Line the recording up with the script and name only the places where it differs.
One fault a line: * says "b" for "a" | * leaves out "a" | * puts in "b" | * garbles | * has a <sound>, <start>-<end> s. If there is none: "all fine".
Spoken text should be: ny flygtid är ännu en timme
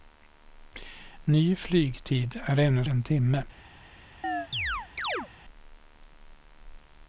* has a chirp, 4.2-5.3 s